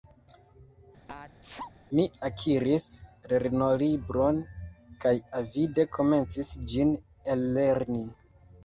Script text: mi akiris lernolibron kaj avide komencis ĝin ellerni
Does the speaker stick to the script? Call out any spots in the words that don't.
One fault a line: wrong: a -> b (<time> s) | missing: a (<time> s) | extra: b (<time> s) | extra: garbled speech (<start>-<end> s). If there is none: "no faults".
no faults